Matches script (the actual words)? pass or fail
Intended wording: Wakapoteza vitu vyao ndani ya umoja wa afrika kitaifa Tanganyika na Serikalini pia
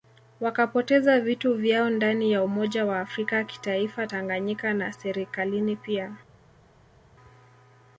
pass